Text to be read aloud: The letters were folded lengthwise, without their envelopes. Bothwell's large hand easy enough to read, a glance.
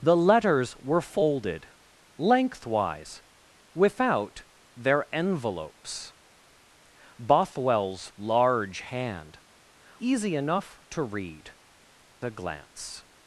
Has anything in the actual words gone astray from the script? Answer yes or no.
no